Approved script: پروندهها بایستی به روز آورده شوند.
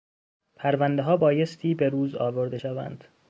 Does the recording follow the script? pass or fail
pass